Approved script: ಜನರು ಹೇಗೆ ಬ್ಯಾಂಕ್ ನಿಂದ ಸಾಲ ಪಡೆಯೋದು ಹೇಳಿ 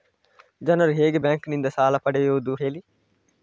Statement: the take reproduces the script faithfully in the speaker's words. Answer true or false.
true